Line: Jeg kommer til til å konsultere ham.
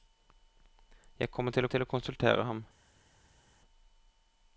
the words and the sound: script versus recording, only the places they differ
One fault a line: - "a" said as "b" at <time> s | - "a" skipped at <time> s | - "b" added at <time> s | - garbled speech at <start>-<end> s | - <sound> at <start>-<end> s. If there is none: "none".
none